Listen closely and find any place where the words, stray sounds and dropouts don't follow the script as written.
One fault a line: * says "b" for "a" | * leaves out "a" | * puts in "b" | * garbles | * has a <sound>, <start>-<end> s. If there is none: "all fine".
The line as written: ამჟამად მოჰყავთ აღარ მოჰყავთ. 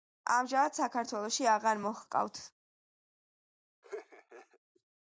* says "საქართველოში" for "მოჰყავთ"
* has a laugh, 3.8-4.6 s